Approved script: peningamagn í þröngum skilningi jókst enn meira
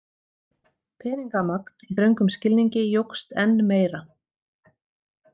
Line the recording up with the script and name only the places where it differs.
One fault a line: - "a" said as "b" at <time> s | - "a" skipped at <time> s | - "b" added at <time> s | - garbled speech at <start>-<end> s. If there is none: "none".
none